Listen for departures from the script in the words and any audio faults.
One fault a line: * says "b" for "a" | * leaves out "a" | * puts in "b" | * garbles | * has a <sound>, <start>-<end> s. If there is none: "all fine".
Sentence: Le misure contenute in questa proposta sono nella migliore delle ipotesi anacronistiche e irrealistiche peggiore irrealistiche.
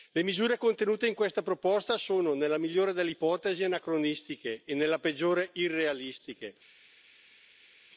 * says "nella" for "irrealistiche"